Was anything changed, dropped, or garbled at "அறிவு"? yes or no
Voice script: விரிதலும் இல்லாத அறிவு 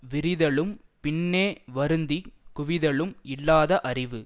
no